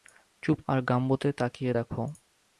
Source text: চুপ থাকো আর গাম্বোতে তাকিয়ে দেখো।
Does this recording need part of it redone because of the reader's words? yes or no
yes